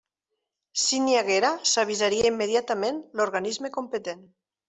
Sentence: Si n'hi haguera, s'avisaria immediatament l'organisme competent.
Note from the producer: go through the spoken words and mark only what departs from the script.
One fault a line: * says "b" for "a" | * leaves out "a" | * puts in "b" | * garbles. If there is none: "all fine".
all fine